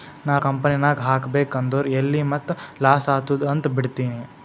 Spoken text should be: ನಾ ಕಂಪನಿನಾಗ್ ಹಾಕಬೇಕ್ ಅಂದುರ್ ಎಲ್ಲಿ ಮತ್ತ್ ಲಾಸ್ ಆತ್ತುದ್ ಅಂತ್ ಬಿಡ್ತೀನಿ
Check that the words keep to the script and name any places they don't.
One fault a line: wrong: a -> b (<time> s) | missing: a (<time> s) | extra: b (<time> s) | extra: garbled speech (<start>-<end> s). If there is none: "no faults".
no faults